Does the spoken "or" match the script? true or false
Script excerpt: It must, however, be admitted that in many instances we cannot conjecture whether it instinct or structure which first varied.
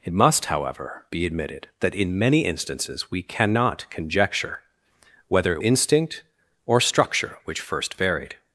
true